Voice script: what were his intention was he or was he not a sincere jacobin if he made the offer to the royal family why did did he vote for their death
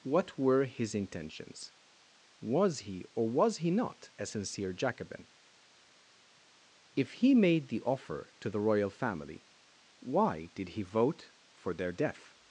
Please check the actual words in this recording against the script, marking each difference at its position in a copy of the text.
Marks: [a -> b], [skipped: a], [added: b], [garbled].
what were his [intention -> intentions] was he or was he not a sincere jacobin if he made the offer to the royal family why did [skipped: did] he vote for their death